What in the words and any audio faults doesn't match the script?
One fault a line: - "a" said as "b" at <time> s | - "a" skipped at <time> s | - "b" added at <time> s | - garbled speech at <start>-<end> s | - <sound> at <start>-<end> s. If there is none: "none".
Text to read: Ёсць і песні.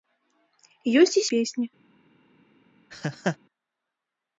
- laugh at 2.9-3.4 s